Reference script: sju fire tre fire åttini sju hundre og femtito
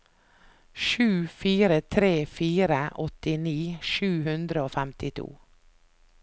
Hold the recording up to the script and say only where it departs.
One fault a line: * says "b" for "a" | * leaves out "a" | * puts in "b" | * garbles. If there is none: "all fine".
all fine